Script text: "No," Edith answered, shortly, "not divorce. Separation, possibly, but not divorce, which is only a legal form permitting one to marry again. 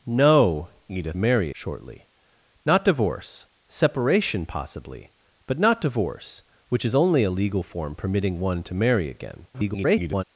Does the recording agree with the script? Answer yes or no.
no